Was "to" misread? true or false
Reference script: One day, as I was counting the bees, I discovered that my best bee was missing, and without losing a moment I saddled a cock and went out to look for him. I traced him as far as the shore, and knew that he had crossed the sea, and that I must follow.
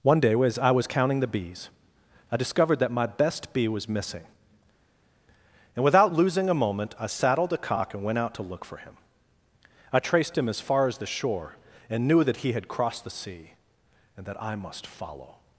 false